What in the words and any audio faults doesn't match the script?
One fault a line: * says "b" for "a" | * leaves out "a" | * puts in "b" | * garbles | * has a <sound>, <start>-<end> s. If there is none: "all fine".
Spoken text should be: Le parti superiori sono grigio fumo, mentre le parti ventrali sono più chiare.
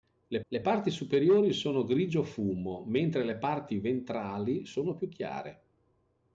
* puts in "le"